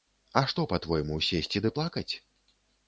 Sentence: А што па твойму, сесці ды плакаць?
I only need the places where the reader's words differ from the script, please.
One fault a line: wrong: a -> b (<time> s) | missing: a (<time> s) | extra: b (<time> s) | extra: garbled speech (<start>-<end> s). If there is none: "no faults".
no faults